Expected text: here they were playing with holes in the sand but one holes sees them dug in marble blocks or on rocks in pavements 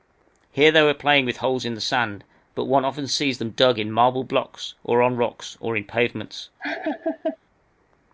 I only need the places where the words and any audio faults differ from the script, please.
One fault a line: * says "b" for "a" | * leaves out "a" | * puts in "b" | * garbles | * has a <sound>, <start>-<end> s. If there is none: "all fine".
* says "often" for "holes"
* puts in "or"
* has a laugh, 6.6-7.4 s